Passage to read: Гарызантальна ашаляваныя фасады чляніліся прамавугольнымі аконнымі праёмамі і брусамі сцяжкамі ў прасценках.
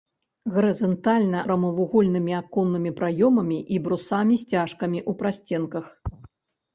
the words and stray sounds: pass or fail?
fail